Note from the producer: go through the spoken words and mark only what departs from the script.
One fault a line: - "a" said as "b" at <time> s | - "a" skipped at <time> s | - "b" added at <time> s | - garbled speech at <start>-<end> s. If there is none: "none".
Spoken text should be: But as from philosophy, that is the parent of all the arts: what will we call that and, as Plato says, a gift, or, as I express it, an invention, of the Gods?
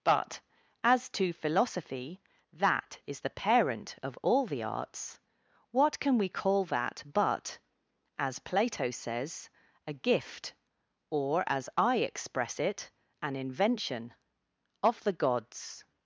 - "from" said as "to" at 1.1 s
- "will" said as "can" at 6.0 s
- "and" said as "but" at 7.0 s